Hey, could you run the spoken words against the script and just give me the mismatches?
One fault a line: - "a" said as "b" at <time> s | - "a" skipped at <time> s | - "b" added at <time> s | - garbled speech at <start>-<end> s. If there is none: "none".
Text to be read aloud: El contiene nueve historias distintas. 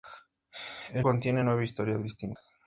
none